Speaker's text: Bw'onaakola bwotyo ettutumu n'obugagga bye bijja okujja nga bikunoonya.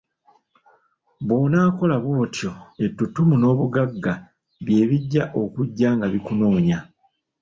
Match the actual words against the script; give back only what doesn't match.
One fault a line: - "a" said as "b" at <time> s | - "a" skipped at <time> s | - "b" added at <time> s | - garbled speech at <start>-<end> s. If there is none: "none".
none